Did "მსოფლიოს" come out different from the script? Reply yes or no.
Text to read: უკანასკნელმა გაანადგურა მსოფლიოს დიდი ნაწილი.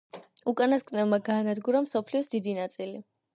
no